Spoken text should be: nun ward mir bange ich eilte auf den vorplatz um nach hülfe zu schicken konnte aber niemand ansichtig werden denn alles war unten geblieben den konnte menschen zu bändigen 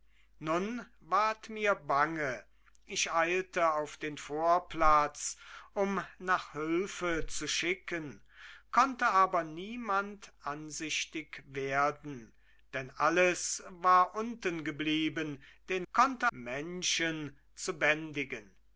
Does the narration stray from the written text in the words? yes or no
no